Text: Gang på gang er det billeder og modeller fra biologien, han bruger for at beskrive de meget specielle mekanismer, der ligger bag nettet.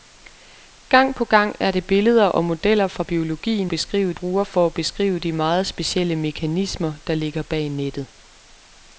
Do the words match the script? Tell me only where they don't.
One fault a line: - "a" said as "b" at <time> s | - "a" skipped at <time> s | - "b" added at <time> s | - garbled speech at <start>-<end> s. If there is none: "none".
- "han" said as "beskrive" at 3.7 s